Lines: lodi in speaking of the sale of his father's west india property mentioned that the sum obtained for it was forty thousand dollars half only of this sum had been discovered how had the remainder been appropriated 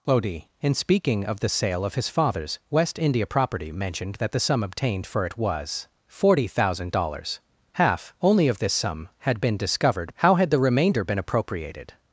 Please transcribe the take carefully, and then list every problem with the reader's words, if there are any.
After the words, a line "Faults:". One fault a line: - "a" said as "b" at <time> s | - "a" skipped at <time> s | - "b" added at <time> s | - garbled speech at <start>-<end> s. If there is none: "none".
lodi in speaking of the sale of his father's west india property mentioned that the sum obtained for it was forty thousand dollars half only of this sum had been discovered how had the remainder been appropriated
Faults:
none